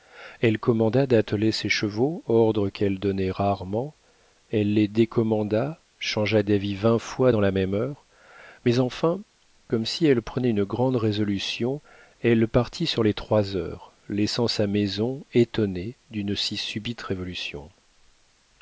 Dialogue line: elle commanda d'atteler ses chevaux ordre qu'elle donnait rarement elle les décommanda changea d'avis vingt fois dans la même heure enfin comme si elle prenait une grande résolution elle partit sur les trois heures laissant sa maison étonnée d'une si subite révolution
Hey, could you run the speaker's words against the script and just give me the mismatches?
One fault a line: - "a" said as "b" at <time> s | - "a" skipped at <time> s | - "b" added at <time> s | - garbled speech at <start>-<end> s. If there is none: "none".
- "mais" added at 8.6 s